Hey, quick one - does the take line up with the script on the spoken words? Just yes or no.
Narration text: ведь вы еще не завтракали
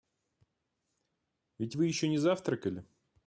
yes